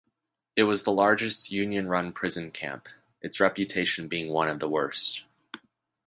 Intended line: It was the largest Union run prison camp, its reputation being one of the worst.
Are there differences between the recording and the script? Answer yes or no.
no